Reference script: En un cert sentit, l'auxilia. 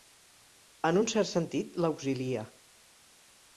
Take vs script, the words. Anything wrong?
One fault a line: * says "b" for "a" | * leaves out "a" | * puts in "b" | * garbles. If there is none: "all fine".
all fine